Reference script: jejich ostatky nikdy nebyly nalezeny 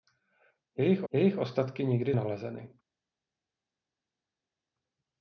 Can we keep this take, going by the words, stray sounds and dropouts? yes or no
no